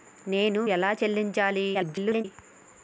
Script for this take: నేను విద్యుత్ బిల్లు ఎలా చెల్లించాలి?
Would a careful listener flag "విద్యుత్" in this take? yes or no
yes